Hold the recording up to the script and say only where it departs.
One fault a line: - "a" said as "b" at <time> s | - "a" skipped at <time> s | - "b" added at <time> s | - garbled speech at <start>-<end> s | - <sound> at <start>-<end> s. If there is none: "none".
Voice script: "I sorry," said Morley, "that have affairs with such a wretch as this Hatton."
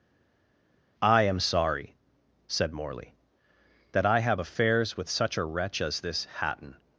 - "am" added at 1.2 s
- "I" added at 4.0 s